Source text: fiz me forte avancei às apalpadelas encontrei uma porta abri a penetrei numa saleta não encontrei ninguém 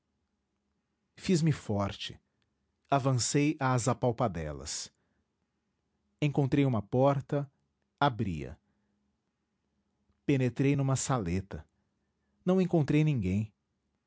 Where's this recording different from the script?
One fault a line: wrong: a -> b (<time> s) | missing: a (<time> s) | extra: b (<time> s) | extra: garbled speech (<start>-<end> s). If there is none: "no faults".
no faults